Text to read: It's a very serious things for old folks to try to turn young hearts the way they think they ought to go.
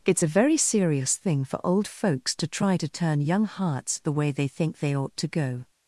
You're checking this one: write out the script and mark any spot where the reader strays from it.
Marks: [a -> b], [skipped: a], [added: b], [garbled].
It's a very serious [things -> thing] for old folks to try to turn young hearts the way they think they ought to go.